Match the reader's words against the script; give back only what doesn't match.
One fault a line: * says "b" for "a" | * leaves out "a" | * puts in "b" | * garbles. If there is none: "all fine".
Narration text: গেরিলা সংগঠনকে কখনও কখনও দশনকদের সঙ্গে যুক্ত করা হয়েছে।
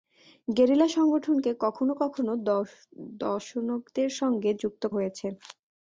* leaves out "করা"